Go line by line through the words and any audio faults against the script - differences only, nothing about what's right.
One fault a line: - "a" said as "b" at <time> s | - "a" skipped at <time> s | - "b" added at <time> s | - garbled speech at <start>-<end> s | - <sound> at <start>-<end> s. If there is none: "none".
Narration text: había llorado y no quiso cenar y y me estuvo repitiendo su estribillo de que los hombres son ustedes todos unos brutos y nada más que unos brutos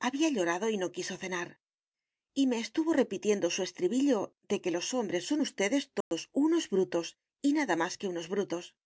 - "y" skipped at 2.5 s
- dropout at 6.0-6.1 s